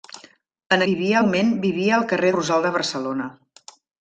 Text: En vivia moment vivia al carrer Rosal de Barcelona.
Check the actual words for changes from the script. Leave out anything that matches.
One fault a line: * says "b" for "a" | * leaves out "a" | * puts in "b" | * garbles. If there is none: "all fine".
all fine